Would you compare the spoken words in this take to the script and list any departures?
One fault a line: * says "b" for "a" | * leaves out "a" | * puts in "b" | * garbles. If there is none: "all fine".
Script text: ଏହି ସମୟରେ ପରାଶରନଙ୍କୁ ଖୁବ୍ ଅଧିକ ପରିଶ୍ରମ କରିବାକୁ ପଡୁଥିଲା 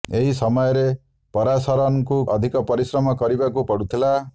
* leaves out "ଖୁବ୍"